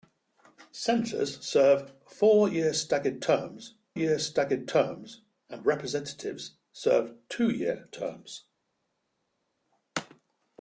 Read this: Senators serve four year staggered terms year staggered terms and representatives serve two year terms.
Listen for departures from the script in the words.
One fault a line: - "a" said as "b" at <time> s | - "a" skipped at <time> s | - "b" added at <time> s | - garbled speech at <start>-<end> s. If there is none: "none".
none